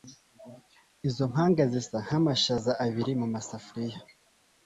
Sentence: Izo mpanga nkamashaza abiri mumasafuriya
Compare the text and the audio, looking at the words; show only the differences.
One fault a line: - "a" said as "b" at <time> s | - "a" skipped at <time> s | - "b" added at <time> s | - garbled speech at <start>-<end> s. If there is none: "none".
- "zisa" added at 1.7 s